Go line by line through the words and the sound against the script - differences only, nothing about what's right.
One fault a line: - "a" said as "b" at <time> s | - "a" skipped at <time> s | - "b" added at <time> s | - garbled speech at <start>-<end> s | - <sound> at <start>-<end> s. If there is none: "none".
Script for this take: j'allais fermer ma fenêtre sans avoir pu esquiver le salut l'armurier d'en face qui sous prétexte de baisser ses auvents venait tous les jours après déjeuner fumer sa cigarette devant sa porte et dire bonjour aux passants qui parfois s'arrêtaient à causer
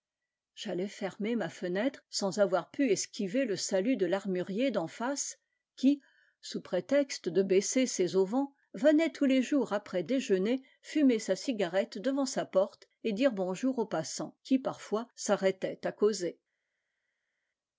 - "de" added at 4.0 s